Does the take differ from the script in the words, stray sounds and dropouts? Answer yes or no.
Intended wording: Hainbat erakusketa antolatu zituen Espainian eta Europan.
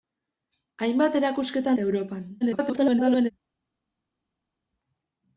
yes